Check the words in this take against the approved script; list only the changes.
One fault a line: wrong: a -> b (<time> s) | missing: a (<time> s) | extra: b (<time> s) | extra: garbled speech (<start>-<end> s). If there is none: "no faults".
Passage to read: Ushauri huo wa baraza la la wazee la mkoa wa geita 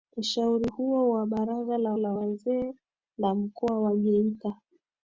no faults